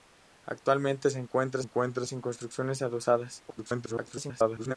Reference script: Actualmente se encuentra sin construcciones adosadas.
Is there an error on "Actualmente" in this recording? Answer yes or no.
no